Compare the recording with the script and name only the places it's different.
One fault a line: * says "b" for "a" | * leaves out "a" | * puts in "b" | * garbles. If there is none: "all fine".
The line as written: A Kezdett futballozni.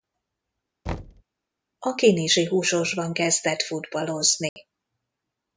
* puts in "Kinizsi Húsosban"